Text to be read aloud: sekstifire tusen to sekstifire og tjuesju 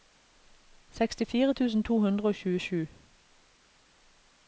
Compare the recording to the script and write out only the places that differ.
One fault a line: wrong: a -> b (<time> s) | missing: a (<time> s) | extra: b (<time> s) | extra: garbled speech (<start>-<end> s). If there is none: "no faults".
wrong: sekstifire -> hundre (2.1 s)